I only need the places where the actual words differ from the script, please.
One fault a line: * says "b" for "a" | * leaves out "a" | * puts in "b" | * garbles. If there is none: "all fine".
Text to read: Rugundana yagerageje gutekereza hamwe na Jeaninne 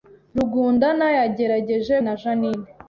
* leaves out "gutekereza hamwe"